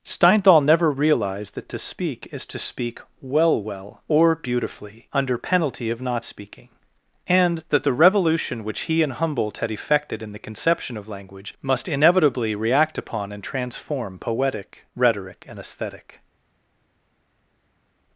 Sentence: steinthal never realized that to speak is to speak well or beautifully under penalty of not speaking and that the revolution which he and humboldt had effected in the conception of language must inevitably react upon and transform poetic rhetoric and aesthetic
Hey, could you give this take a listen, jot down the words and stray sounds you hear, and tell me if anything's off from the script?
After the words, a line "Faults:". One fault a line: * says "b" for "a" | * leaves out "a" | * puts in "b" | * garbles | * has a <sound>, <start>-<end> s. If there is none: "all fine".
steinthal never realized that to speak is to speak well well or beautifully under penalty of not speaking and that the revolution which he and humboldt had effected in the conception of language must inevitably react upon and transform poetic rhetoric and aesthetic
Faults:
* puts in "well"